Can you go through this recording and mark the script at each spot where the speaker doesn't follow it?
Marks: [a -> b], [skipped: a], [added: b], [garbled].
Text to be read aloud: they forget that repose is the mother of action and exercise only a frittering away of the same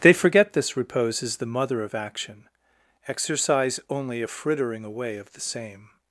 they forget [that -> this] repose is the mother of action [skipped: and] exercise only a frittering away of the same